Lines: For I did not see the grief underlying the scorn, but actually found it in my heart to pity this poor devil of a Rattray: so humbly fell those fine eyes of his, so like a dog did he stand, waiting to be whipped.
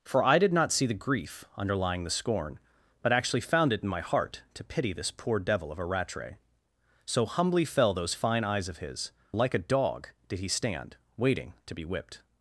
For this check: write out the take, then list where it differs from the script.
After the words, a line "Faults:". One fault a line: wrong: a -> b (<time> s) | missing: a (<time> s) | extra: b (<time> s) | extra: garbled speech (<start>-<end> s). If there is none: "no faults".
For I did not see the grief underlying the scorn, but actually found it in my heart to pity this poor devil of a Rattray: so humbly fell those fine eyes of his, like a dog did he stand, waiting to be whipped.
Faults:
missing: so (9.1 s)